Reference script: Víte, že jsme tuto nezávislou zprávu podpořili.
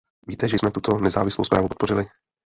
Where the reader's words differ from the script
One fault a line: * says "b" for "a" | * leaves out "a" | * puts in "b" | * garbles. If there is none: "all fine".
all fine